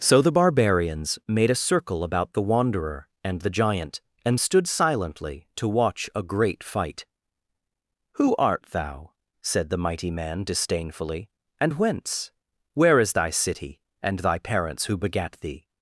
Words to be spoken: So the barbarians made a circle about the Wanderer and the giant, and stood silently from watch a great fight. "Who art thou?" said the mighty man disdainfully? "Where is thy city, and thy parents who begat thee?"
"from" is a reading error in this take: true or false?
true